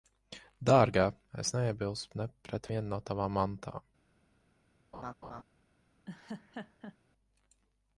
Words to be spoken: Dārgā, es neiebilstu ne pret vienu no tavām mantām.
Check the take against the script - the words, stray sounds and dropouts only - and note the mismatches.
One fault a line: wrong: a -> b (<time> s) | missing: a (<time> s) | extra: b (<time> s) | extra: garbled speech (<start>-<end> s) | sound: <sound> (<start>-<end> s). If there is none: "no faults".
sound: laugh (4.9-5.4 s)
sound: laugh (6.1-7.0 s)